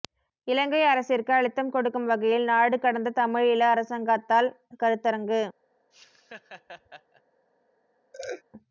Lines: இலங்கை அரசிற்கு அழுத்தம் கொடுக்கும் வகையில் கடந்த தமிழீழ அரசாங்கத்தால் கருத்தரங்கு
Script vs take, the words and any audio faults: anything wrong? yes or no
yes